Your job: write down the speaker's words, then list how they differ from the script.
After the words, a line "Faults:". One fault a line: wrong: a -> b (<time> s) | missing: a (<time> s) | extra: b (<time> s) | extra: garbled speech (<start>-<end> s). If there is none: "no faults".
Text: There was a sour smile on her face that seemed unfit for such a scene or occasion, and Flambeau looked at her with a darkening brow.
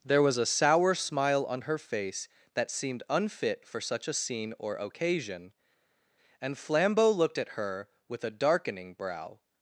There was a sour smile on her face that seemed unfit for such a scene or occasion, and Flambeau looked at her with a darkening brow.
Faults:
no faults